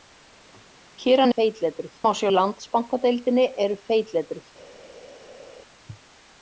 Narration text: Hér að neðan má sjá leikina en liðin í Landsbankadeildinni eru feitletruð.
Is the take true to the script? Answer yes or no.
no